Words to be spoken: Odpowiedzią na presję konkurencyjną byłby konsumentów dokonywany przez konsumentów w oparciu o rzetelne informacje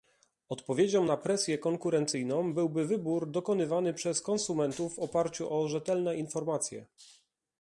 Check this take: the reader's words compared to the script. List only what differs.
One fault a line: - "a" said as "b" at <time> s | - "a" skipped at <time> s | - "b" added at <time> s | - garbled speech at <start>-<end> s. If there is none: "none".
- "konsumentów" said as "wybór" at 2.9 s